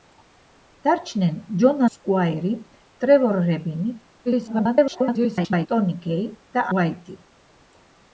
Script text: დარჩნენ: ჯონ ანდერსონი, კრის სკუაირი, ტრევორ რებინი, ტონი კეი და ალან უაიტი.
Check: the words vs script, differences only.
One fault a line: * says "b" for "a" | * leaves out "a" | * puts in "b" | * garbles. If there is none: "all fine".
* leaves out "ანდერსონი კრის"
* garbles
* leaves out "ალან"